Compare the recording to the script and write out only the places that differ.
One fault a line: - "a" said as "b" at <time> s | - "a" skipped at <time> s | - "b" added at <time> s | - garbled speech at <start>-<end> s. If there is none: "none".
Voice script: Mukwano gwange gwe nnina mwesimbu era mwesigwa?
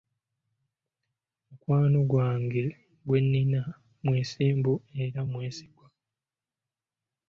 none